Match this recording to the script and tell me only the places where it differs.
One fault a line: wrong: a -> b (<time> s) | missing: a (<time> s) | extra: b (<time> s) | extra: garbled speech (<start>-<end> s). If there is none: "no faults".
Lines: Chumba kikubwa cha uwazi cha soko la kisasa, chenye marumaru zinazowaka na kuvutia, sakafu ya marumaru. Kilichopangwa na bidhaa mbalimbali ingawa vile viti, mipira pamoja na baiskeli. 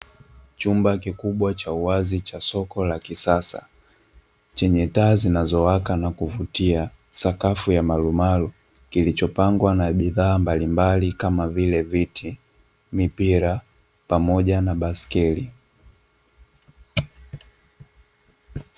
wrong: marumaru -> taa (4.9 s)
wrong: ingawa -> kama (11.1 s)